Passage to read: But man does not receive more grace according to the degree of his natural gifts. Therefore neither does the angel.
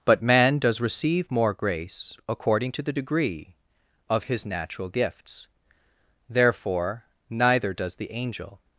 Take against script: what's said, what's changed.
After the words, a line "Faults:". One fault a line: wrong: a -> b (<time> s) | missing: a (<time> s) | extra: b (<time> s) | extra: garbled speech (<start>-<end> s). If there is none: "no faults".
But man does receive more grace according to the degree of his natural gifts. Therefore neither does the angel.
Faults:
missing: not (0.8 s)